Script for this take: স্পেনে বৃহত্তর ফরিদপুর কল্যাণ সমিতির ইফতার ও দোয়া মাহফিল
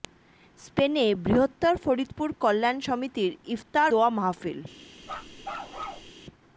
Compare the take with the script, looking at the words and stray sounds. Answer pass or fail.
fail